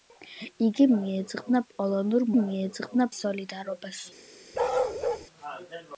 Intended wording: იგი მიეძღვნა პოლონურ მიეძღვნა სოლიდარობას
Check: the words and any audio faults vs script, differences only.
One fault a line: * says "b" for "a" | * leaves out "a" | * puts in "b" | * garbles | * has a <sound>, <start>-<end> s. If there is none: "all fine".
* has a bark, 4.5-5.3 s